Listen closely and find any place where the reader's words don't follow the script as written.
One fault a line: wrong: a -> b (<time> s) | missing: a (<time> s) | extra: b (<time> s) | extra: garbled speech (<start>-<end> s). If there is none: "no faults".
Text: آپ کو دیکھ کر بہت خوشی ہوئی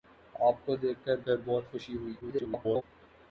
extra: کر (1.2 s)
extra: garbled speech (2.2-2.8 s)